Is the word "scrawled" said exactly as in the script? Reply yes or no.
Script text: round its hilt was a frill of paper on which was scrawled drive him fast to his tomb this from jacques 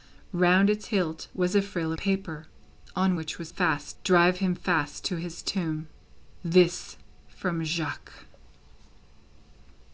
no